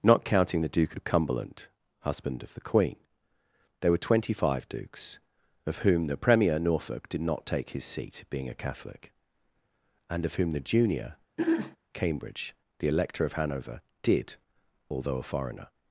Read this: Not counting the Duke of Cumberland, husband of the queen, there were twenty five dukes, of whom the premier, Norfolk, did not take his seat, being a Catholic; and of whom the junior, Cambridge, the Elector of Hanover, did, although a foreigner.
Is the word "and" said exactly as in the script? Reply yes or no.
yes